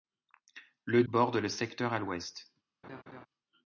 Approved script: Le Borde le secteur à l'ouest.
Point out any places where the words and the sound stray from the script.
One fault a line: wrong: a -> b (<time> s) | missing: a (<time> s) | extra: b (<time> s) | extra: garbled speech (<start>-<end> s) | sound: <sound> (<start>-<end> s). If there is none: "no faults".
sound: laugh (2.8-3.3 s)